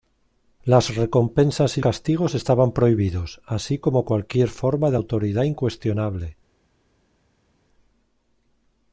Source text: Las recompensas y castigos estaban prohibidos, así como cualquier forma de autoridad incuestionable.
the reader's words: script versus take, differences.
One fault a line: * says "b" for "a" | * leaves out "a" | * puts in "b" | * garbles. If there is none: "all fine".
all fine